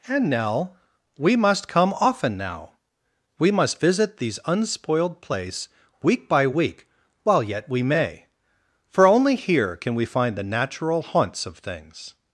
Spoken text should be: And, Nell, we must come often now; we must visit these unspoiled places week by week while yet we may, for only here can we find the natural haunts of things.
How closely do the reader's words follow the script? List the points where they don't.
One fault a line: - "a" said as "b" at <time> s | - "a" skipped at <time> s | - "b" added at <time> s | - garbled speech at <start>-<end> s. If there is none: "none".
- "places" said as "place" at 5.2 s